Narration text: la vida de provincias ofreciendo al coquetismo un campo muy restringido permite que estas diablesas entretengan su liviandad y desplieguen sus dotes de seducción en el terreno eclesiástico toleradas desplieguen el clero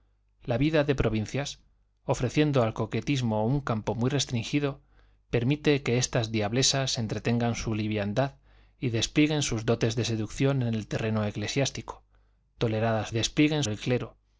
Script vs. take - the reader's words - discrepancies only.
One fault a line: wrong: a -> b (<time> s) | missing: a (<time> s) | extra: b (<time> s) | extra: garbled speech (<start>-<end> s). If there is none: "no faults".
no faults